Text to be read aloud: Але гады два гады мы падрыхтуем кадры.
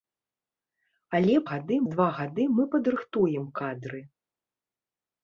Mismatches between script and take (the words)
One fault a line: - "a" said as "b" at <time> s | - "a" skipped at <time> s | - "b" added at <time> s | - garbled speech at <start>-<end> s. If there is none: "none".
none